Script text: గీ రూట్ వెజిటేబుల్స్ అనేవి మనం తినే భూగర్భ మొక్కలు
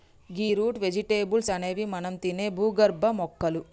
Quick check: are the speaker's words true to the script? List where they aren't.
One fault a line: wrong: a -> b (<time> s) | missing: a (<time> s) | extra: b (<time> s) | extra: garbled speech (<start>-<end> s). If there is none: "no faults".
no faults